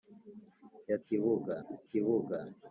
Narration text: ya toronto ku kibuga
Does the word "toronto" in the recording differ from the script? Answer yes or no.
yes